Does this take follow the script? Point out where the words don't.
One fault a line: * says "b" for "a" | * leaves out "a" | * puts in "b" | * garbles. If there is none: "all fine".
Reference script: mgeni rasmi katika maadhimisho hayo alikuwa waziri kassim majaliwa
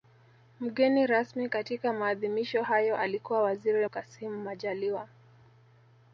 all fine